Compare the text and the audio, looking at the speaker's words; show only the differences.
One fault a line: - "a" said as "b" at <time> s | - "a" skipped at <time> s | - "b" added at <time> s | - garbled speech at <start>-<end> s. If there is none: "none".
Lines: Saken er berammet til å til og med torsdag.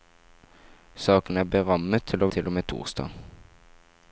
none